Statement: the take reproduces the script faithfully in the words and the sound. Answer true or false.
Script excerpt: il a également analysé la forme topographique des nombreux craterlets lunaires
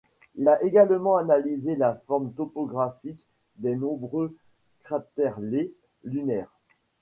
true